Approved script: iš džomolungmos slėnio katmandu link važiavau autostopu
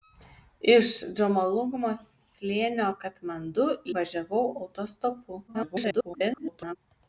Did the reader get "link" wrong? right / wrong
wrong